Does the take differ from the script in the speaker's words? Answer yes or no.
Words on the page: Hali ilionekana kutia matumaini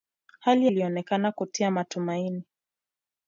no